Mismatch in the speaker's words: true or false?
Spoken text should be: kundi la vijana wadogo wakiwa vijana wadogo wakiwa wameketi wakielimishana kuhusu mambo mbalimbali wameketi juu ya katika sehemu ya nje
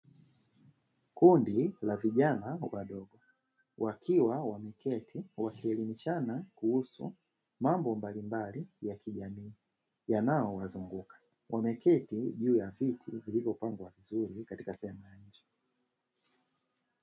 true